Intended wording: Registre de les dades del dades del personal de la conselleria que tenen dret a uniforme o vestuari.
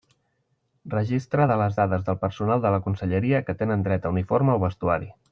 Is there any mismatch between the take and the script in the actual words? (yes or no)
yes